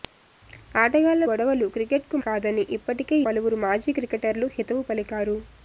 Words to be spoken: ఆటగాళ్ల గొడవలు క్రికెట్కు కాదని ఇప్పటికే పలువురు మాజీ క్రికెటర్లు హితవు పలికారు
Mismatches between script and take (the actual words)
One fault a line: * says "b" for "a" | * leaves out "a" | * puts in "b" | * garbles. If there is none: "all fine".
all fine